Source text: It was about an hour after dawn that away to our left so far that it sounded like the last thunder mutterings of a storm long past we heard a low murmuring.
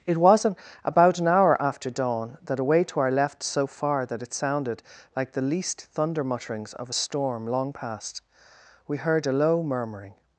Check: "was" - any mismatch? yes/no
yes